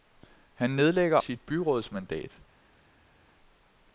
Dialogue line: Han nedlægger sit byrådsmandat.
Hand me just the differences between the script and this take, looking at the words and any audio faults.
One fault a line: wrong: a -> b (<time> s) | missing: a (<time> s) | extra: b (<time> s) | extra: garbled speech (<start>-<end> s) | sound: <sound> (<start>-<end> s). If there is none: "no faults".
no faults